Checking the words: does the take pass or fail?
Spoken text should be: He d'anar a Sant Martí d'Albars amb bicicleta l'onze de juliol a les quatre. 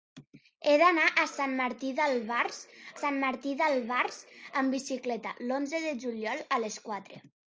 fail